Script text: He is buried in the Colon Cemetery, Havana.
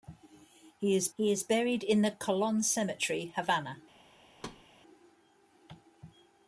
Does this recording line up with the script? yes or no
no